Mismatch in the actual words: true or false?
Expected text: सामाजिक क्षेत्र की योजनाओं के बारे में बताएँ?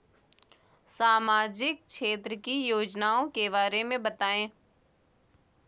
false